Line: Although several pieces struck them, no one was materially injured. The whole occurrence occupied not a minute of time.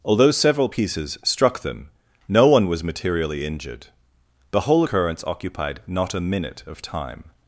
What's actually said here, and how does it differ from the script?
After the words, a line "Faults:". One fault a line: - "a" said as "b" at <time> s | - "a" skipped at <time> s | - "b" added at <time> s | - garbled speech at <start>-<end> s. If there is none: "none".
Although several pieces struck them, no one was materially injured. The whole occurrence occupied not a minute of time.
Faults:
none